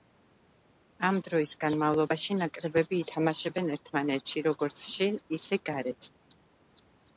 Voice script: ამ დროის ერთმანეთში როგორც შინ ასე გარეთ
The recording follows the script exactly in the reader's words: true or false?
false